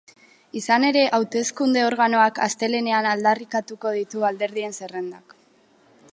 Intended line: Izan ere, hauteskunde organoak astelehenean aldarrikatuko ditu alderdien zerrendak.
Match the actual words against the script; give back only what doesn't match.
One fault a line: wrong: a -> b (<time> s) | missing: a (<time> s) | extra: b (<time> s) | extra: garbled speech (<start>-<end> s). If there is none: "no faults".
no faults